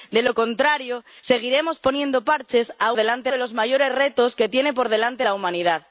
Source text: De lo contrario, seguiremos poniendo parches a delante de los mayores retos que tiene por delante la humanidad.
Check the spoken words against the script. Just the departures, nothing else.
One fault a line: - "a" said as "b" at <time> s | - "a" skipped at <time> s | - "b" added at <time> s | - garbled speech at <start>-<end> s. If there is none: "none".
none